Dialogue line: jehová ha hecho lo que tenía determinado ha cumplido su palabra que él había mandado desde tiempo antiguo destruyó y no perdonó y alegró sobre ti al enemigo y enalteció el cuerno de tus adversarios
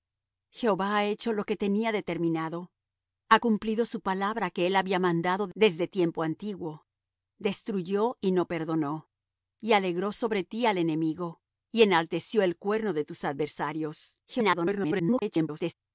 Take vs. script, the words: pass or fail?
fail